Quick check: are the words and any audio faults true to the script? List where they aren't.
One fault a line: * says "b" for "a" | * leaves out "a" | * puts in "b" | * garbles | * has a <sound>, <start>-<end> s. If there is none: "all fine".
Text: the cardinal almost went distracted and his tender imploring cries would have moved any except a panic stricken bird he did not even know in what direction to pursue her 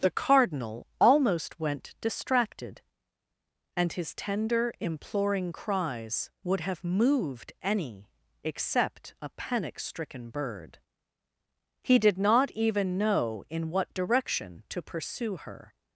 all fine